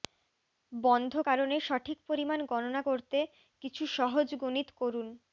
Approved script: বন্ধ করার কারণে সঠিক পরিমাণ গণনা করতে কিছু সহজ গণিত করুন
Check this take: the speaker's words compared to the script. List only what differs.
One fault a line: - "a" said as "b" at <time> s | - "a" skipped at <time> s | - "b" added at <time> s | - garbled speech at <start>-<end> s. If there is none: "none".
- "করার" skipped at 1.1 s